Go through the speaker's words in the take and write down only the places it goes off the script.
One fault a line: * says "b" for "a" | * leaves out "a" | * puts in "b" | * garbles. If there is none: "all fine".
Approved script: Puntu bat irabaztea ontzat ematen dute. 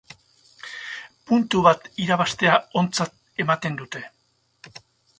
all fine